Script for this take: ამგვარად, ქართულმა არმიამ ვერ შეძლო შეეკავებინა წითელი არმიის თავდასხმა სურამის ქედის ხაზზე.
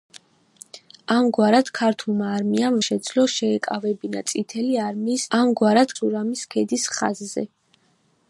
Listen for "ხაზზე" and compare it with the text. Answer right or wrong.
right